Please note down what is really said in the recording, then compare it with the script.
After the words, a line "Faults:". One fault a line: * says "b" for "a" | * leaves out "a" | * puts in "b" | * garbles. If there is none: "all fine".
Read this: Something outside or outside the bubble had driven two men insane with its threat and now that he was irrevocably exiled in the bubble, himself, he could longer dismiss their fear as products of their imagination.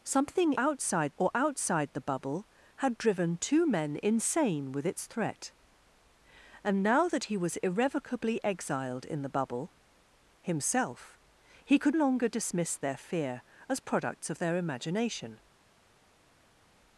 Something outside or outside the bubble had driven two men insane with its threat and now that he was irrevocably exiled in the bubble, himself, he could longer dismiss their fear as products of their imagination.
Faults:
all fine